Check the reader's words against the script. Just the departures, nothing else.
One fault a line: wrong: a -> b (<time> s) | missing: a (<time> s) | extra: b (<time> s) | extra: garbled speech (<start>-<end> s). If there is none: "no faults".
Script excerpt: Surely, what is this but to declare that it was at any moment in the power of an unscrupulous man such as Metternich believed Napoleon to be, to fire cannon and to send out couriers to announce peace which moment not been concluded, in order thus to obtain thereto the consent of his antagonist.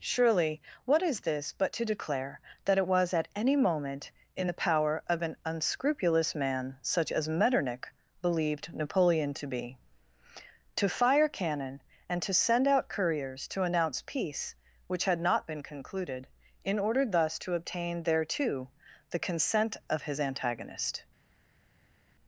wrong: moment -> had (15.0 s)